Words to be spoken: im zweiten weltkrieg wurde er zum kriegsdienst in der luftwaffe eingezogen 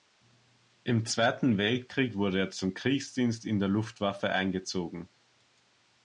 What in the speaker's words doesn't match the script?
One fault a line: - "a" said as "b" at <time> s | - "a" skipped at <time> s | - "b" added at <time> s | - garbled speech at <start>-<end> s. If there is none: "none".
none